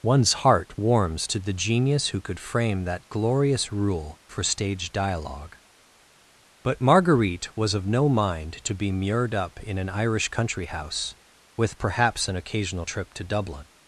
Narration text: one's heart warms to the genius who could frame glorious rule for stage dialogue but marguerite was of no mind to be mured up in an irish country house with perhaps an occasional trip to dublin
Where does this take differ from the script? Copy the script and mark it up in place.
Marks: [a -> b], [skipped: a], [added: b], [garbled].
one's heart warms to the genius who could frame [added: that] glorious rule for stage dialogue but marguerite was of no mind to be mured up in an irish country house with perhaps an occasional trip to dublin